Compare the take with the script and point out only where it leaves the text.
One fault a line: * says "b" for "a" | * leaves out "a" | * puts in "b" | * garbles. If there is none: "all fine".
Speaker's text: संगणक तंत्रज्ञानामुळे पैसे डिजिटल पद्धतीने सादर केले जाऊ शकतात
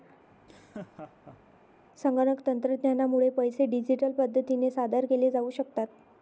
all fine